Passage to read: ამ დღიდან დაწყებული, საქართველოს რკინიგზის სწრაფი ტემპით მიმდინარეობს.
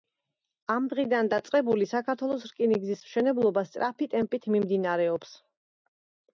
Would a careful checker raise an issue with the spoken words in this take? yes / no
yes